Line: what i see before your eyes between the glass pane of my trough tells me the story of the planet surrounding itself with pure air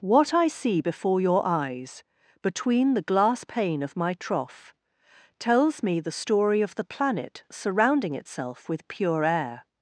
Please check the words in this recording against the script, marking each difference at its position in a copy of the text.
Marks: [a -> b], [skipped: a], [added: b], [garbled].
what i see before your eyes between the glass pane of my trough tells me the story of the planet surrounding itself with pure air